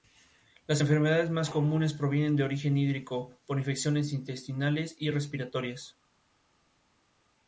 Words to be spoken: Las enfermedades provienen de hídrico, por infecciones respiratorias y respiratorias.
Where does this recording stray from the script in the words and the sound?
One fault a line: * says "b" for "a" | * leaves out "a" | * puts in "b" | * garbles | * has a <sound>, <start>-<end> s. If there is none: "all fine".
* puts in "más comunes"
* puts in "origen"
* says "intestinales" for "respiratorias"